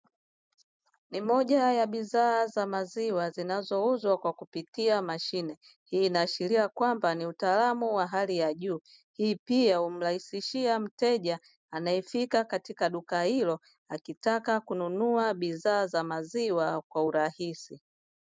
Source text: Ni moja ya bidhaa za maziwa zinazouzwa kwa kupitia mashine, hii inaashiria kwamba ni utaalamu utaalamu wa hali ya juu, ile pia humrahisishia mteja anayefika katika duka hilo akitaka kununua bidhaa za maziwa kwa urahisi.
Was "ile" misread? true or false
true